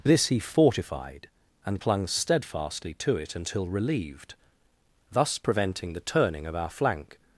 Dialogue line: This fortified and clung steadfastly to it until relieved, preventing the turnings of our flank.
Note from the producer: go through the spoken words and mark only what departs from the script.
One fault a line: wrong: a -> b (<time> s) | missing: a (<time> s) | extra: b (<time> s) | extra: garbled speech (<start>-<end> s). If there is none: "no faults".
extra: he (0.3 s)
extra: thus (5.1 s)
wrong: turnings -> turning (6.0 s)